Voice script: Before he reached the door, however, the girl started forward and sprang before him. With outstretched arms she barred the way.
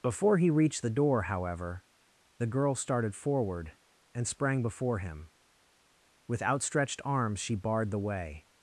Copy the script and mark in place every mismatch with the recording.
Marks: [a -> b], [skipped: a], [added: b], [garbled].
Before he reached the door, however, the girl started forward and sprang before him. With outstretched arms she barred the way.